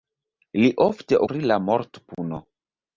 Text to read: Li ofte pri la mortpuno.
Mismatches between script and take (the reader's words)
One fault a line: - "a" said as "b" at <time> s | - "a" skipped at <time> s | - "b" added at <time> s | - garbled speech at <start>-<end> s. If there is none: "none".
none